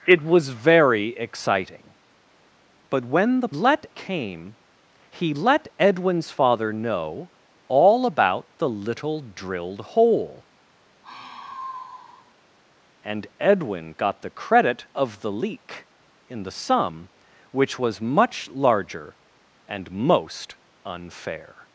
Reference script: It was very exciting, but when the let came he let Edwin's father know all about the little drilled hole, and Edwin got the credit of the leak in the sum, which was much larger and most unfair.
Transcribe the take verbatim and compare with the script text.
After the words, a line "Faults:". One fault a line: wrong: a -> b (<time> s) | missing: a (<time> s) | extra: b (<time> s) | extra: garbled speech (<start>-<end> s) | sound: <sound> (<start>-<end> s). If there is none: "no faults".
It was very exciting, but when the let came he let Edwin's father know all about the little drilled hole, and Edwin got the credit of the leak in the sum, which was much larger and most unfair.
Faults:
sound: sigh (11.0-12.3 s)